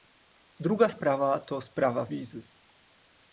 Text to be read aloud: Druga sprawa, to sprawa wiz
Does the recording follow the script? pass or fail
pass